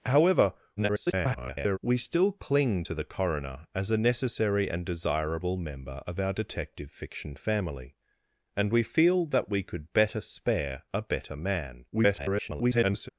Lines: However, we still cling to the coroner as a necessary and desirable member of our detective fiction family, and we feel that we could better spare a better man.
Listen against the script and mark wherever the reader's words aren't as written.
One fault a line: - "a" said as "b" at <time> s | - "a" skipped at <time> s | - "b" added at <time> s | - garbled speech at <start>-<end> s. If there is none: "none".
- garbled speech at 0.8-1.8 s
- garbled speech at 11.9-13.1 s